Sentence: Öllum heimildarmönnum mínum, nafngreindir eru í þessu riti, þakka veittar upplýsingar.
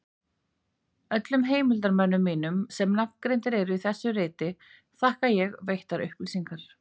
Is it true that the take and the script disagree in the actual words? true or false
true